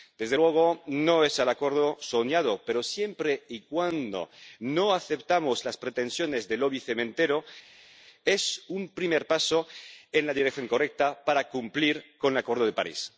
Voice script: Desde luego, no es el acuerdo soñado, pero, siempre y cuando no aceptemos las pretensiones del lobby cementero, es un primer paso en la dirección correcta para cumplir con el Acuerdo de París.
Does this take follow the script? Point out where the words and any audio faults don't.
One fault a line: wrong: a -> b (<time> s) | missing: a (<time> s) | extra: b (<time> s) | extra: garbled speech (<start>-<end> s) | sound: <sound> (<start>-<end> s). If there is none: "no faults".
no faults